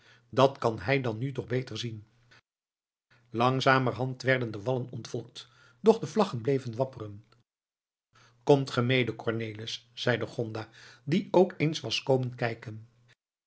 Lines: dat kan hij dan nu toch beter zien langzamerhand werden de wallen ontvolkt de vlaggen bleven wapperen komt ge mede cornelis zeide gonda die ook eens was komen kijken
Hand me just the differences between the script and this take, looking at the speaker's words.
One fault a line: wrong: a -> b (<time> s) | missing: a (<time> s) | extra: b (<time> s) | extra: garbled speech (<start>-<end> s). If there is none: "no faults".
extra: doch (5.8 s)